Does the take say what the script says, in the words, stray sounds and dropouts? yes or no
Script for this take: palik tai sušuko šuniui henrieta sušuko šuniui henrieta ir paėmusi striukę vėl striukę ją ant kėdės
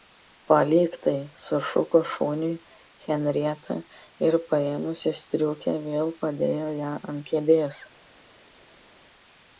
no